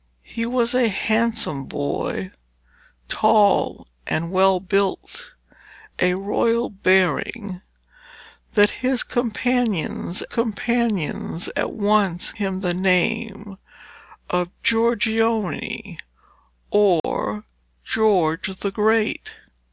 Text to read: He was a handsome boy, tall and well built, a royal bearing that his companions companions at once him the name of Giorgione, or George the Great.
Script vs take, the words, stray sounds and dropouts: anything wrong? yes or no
yes